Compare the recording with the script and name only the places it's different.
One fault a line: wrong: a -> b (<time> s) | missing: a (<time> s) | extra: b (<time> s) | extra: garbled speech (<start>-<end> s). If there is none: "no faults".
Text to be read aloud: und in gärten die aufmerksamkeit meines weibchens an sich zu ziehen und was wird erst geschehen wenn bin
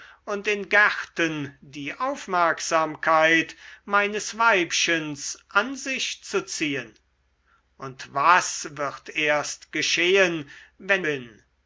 no faults